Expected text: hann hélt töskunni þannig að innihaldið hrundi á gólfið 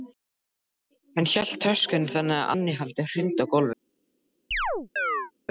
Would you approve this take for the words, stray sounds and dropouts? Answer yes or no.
no